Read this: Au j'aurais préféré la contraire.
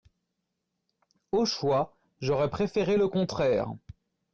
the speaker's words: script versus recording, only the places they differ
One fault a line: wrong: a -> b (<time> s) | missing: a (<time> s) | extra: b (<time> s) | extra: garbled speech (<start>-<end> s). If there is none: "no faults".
extra: choix (1.4 s)
wrong: la -> le (3.0 s)